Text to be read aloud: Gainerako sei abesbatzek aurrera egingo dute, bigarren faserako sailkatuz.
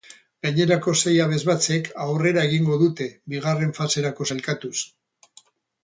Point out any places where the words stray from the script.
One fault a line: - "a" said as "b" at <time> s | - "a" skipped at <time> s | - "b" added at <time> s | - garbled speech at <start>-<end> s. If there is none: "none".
none